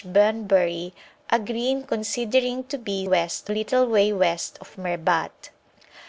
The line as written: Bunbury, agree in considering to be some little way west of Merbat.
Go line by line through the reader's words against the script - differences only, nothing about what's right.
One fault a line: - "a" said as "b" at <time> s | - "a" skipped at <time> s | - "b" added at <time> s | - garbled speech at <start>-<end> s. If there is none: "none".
- "some" said as "west" at 3.0 s